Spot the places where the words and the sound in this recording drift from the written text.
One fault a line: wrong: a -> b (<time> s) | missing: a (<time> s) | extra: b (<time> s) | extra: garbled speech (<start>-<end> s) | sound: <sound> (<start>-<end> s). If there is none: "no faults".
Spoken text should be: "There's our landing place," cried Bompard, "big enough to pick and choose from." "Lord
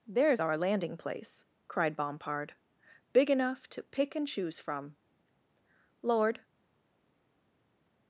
no faults